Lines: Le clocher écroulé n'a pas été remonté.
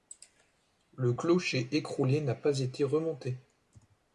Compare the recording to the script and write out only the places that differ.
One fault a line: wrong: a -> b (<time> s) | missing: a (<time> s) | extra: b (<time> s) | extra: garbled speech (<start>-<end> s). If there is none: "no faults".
no faults